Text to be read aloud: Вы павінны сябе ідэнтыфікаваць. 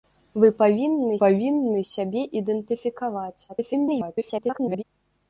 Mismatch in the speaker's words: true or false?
true